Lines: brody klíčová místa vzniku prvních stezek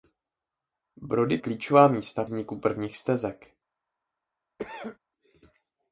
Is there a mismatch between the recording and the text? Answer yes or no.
no